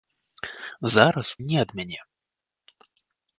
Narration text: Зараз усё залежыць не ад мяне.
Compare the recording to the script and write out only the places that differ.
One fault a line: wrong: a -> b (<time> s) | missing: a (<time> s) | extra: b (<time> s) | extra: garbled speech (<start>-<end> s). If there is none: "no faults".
missing: усё залежыць (1.3 s)